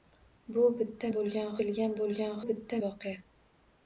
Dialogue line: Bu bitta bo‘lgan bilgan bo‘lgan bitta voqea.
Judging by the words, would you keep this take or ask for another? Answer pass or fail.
pass